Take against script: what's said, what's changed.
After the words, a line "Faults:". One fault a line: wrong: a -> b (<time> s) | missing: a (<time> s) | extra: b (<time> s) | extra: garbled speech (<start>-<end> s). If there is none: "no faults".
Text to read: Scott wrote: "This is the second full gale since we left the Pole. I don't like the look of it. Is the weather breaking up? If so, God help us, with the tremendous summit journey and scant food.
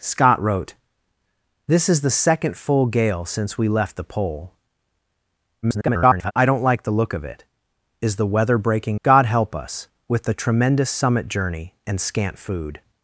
Scott wrote: "This is the second full gale since we left the Pole. [garbled] I don't like the look of it. Is the weather breaking God help us, with the tremendous summit journey and scant food.
Faults:
extra: garbled speech (5.6-6.3 s)
missing: up If so (9.0 s)